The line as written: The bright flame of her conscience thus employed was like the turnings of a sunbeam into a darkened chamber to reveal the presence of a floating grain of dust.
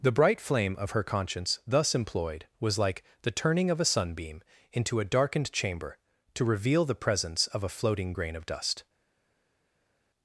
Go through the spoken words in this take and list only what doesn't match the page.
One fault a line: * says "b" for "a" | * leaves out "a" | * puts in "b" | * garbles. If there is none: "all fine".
* says "turning" for "turnings"